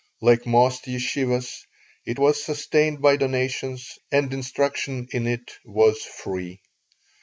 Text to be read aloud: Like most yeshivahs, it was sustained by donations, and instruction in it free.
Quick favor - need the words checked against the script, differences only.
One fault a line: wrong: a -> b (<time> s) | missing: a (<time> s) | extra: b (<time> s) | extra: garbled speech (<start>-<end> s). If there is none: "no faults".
extra: was (5.6 s)